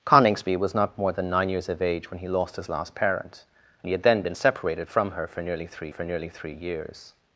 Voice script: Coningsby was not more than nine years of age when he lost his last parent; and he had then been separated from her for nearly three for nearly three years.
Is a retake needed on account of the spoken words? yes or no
no